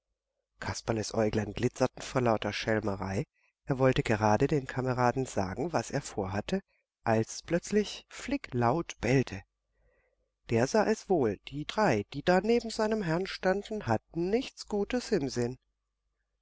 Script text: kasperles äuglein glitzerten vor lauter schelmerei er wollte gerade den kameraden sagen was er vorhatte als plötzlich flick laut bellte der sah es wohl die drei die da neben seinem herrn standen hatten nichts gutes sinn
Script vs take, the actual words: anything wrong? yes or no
yes